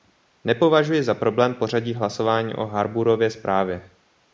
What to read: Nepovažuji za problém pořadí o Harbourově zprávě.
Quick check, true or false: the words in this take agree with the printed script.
false